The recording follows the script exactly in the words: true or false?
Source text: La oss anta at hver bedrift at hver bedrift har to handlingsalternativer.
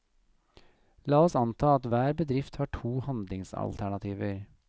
false